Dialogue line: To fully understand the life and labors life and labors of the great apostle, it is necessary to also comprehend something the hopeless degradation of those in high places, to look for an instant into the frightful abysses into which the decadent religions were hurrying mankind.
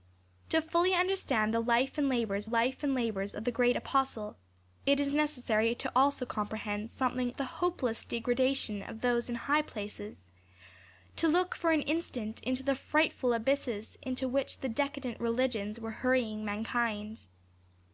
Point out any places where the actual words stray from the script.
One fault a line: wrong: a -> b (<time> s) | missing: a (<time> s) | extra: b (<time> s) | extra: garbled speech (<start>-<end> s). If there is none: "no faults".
no faults